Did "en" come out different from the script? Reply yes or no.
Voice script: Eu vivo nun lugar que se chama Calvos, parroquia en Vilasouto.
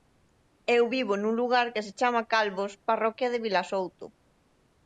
yes